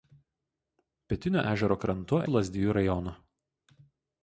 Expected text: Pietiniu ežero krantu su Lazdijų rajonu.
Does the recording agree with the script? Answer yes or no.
yes